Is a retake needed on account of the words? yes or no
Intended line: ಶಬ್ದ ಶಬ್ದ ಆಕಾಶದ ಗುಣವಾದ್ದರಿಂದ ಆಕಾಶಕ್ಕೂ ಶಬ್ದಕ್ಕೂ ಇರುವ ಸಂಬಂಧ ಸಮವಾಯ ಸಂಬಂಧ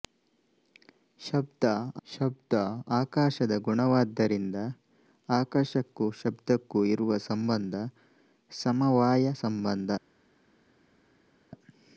no